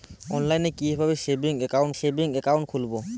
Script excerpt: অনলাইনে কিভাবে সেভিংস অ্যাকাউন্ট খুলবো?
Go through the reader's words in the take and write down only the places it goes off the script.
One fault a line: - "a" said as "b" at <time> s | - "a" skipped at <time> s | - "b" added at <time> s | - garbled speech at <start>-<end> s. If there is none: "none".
- "সেভিংস অ্যাকাউন্ট" added at 1.9 s